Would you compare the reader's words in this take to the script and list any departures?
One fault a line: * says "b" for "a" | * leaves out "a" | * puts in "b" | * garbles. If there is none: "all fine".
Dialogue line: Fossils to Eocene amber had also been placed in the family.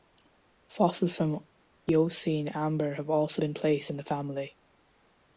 * says "from" for "to"
* says "have" for "had"